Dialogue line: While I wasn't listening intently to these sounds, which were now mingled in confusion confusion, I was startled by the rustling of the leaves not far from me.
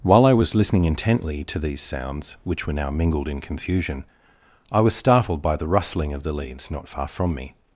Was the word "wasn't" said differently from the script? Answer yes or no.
yes